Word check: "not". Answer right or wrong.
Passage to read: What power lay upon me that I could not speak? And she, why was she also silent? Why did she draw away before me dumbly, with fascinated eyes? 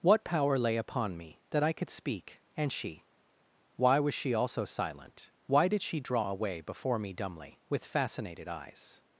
wrong